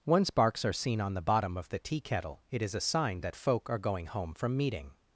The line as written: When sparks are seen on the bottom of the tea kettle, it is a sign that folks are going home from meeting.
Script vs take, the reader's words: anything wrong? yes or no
yes